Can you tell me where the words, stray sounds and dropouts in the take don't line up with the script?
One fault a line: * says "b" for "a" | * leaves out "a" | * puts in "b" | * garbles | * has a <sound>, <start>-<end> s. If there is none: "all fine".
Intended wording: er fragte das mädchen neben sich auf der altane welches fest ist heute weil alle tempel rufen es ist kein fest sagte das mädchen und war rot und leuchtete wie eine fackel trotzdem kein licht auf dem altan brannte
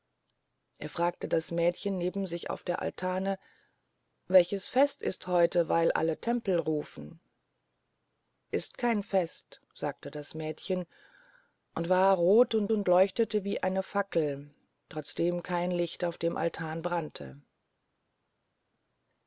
* leaves out "es"
* puts in "und"